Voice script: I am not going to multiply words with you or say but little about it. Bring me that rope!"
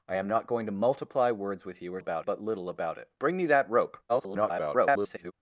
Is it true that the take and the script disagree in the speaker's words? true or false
true